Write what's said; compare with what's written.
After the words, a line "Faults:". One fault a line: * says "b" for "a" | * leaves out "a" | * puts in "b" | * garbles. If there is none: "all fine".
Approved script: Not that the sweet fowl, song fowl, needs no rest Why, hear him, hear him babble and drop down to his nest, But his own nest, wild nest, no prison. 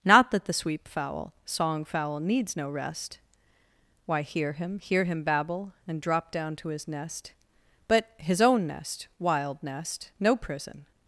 Not that the sweep fowl, song fowl, needs no rest Why, hear him, hear him babble and drop down to his nest, But his own nest, wild nest, no prison.
Faults:
* says "sweep" for "sweet"